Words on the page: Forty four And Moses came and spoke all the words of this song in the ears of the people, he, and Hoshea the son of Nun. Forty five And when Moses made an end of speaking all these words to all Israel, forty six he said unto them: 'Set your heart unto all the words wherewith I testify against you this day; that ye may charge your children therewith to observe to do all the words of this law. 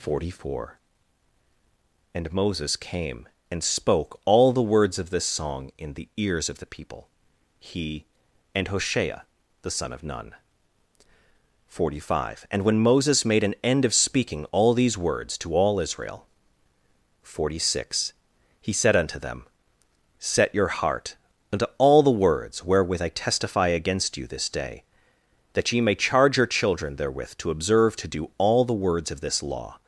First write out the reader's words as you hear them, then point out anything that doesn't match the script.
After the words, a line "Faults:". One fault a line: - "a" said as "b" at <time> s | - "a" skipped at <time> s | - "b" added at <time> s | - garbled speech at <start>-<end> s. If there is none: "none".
Forty four And Moses came and spoke all the words of this song in the ears of the people, he, and Hoshea the son of Nun. Forty five And when Moses made an end of speaking all these words to all Israel, forty six he said unto them: 'Set your heart unto all the words wherewith I testify against you this day; that ye may charge your children therewith to observe to do all the words of this law.
Faults:
none